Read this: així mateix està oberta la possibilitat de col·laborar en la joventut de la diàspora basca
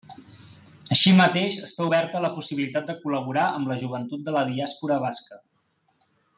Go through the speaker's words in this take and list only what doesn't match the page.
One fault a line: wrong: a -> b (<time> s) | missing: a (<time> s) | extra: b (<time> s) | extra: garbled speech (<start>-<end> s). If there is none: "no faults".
wrong: en -> amb (3.6 s)